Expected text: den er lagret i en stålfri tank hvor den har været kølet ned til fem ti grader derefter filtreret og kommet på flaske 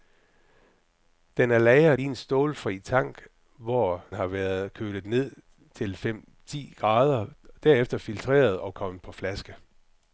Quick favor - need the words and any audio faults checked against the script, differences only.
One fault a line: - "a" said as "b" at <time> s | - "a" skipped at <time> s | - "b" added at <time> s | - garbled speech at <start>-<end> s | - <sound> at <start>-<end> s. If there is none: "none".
- "den" skipped at 4.0 s